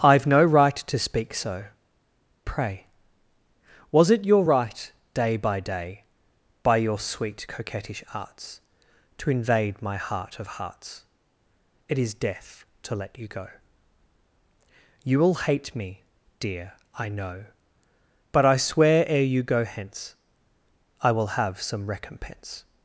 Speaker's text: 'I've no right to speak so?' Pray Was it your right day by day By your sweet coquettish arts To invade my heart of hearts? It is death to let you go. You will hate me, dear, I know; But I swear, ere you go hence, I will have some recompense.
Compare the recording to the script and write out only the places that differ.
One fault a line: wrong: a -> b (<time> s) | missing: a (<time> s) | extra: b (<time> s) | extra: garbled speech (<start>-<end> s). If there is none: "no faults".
no faults